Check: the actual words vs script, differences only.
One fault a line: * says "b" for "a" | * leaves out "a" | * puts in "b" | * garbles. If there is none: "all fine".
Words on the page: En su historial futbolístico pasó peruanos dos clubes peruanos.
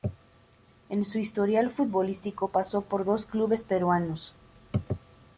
* says "por" for "peruanos"